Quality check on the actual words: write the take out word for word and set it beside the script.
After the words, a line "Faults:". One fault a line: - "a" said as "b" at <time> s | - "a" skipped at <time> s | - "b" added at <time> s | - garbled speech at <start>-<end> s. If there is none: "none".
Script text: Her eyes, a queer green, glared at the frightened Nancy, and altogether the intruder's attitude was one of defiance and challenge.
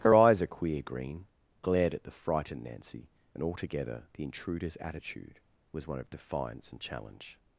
Her eyes, a queer green, glared at the frightened Nancy, and altogether the intruder's attitude was one of defiance and challenge.
Faults:
none